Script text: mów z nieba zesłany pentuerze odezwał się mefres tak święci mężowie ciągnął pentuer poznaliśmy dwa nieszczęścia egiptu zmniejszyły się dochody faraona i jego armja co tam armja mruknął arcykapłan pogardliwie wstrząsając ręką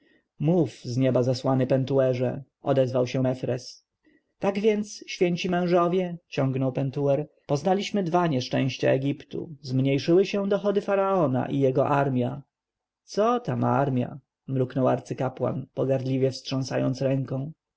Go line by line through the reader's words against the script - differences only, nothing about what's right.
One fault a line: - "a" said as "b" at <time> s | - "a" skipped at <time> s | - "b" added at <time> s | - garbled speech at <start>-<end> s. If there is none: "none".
- "więc" added at 4.6 s